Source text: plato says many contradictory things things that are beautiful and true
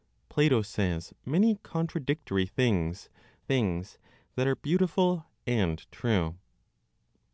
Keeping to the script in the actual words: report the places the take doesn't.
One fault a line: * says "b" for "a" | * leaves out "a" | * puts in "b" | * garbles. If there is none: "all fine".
all fine